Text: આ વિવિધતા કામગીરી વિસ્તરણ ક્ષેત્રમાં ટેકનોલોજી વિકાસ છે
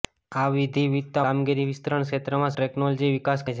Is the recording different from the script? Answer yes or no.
no